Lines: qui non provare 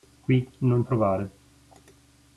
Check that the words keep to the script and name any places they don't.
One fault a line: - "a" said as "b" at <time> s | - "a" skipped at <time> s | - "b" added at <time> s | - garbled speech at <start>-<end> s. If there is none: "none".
none